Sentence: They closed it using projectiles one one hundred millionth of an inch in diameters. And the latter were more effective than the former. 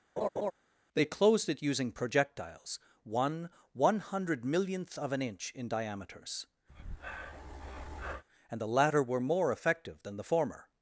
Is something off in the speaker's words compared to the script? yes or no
no